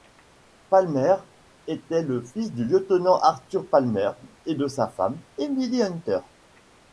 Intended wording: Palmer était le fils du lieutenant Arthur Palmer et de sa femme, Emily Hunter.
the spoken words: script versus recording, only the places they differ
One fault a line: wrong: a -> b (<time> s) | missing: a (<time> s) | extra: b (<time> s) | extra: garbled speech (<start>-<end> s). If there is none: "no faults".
no faults